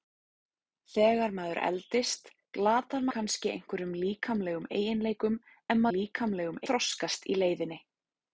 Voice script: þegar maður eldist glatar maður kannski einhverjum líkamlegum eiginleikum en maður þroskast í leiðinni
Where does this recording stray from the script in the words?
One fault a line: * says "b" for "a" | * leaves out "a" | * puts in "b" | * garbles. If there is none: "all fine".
* leaves out "maður"
* says "líkamlegum" for "maður"